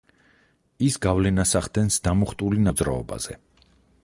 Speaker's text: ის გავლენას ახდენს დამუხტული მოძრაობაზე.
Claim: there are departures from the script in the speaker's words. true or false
false